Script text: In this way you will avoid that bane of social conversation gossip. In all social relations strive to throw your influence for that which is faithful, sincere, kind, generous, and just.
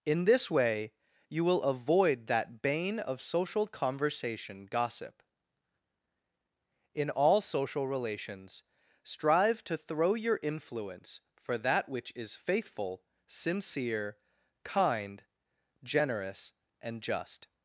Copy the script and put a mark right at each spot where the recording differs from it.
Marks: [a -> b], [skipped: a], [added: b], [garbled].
In this way you will avoid that bane of social conversation gossip. In all social relations strive to throw your influence for that which is faithful, sincere, kind, generous, and just.